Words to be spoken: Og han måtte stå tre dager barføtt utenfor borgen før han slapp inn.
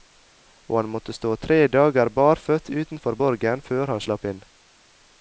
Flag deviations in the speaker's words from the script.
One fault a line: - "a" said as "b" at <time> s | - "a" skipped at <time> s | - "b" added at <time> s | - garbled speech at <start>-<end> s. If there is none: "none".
none